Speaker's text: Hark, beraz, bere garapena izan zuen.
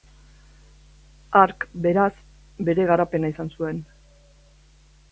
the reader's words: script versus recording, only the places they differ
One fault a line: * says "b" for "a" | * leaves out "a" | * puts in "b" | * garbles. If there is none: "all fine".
all fine